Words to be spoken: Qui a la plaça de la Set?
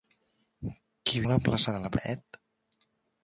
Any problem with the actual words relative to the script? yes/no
no